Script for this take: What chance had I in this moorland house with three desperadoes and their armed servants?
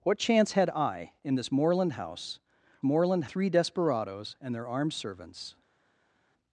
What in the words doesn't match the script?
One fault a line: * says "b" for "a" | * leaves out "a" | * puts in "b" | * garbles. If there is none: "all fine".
* says "moorland" for "with"